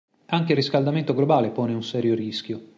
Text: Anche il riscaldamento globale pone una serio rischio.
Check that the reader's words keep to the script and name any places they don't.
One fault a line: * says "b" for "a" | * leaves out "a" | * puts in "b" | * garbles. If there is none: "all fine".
* says "un" for "una"